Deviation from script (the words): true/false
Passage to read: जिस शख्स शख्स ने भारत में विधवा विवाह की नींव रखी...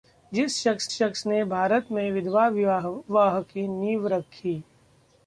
false